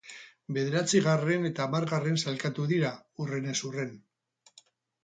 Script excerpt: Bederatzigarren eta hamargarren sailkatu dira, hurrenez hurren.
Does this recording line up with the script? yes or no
yes